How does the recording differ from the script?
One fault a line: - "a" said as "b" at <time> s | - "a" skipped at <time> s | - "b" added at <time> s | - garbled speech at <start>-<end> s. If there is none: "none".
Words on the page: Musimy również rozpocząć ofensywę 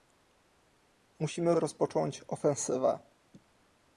- "również" skipped at 1.5 s